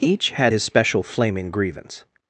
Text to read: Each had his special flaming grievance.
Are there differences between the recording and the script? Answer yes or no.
no